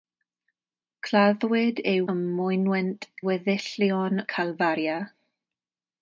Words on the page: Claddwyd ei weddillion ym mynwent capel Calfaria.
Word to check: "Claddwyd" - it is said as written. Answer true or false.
true